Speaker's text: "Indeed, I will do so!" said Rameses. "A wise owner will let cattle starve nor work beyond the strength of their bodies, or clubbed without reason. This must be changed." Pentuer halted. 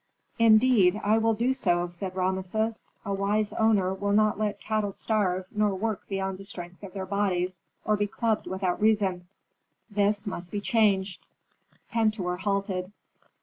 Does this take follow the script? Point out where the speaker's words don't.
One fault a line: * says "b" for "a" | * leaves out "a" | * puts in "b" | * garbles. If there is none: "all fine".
* puts in "not"
* puts in "be"